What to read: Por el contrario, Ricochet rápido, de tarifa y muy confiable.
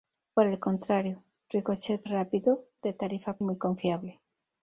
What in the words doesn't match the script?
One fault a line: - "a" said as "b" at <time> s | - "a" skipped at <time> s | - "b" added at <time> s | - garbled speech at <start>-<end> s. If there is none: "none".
none